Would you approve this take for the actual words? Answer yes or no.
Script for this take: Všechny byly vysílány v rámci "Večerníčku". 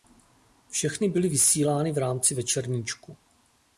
yes